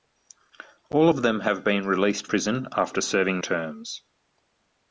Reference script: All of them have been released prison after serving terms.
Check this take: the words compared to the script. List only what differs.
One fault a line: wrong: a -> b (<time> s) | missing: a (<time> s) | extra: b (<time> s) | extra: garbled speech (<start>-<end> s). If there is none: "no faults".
no faults